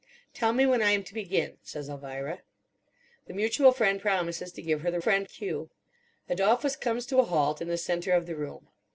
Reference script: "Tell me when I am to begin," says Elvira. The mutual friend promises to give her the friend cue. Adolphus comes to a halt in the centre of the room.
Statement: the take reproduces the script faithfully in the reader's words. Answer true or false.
true